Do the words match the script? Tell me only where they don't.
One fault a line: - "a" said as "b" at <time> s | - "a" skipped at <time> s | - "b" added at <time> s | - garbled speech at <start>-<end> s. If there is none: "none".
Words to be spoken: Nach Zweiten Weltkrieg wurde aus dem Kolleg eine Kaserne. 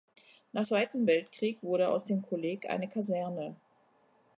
none